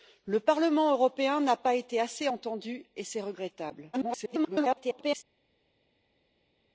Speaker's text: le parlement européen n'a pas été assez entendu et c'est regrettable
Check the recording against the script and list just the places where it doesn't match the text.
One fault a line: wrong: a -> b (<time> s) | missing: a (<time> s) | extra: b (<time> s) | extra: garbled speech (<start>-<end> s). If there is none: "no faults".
extra: garbled speech (3.9-5.2 s)